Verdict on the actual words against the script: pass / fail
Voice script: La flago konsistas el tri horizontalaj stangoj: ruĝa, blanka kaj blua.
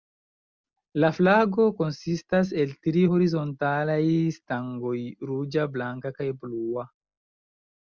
pass